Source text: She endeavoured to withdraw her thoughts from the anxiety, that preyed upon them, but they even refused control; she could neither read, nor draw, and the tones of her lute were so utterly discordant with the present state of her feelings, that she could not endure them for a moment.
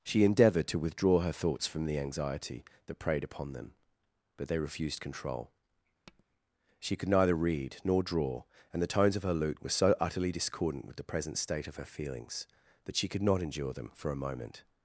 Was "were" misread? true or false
false